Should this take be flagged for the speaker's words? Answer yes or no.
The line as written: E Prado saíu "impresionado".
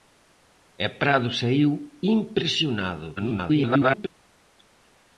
yes